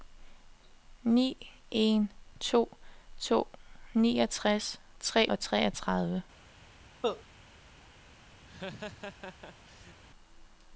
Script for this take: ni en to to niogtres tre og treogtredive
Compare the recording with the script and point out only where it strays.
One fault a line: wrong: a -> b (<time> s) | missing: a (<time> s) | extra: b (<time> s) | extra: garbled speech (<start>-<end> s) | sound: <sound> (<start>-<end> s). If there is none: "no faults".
sound: cough (7.0-7.2 s)
sound: laugh (8.5-10.0 s)